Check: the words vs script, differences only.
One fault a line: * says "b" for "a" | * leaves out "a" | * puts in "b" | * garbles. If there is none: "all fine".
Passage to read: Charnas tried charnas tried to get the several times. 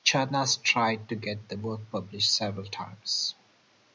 * leaves out "charnas tried"
* puts in "work published"